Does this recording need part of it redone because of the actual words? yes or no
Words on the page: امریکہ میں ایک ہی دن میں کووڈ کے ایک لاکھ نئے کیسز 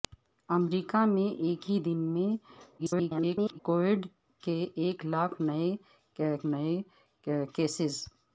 yes